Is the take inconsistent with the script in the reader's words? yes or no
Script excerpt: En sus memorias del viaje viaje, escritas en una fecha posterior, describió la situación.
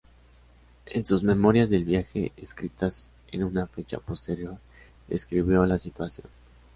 yes